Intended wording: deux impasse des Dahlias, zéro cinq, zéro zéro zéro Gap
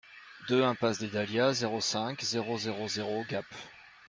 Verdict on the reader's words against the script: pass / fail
pass